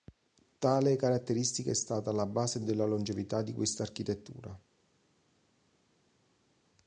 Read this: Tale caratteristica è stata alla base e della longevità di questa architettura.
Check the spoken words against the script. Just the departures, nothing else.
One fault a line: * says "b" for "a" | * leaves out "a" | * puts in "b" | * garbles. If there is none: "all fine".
all fine